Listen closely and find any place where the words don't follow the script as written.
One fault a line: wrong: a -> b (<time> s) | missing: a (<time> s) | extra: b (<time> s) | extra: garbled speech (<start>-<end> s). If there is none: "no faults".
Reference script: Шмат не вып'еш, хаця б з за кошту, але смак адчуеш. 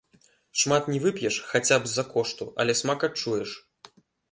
no faults